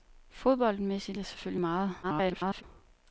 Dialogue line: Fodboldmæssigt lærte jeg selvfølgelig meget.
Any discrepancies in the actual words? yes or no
yes